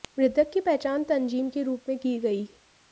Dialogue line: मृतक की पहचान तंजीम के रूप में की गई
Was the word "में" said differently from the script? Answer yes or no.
no